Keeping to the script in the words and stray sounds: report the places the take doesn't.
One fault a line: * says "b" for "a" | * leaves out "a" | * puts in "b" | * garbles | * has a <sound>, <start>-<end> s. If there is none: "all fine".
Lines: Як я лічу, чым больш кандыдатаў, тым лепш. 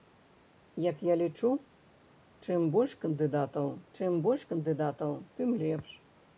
* puts in "чым больш кандыдатаў"